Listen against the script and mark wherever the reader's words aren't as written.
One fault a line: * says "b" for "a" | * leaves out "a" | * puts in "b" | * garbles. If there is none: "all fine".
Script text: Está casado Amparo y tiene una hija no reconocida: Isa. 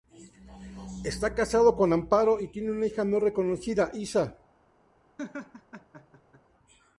* puts in "con"